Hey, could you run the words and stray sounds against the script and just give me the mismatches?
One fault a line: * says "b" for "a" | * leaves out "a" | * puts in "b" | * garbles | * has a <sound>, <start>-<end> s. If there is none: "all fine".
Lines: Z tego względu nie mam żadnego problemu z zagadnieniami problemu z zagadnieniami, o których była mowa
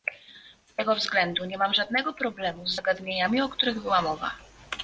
* leaves out "problemu z zagadnieniami"